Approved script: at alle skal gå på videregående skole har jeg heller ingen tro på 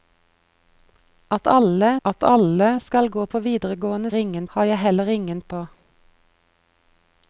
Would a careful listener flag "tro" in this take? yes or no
yes